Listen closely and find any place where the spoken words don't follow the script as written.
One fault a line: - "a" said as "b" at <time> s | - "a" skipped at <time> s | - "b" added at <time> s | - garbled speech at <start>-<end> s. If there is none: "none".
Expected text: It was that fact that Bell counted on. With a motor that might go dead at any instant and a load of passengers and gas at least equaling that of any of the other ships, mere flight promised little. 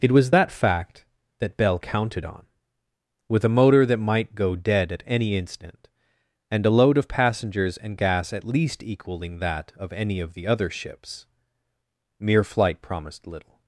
none